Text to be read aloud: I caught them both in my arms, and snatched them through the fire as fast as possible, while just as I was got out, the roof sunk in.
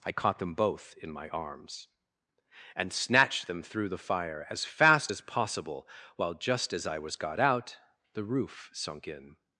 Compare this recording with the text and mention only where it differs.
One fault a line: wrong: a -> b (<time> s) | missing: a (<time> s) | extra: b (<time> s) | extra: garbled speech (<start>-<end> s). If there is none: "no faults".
no faults